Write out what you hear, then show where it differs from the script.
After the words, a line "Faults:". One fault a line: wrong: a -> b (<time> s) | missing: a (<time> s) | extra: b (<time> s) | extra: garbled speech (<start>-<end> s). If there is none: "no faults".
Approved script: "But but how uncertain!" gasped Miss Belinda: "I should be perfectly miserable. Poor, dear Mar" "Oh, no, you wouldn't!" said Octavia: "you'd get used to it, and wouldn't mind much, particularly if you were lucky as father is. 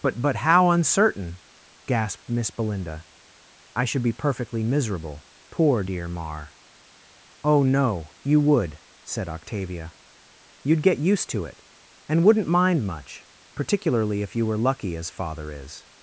"But but how uncertain!" gasped Miss Belinda: "I should be perfectly miserable. Poor, dear Mar" "Oh, no, you would!" said Octavia: "you'd get used to it, and wouldn't mind much, particularly if you were lucky as father is.
Faults:
wrong: wouldn't -> would (8.4 s)